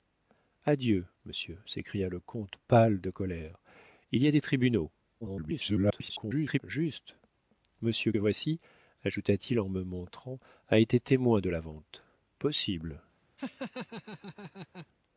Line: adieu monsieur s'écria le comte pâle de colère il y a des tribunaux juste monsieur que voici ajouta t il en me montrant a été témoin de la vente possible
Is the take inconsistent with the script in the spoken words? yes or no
yes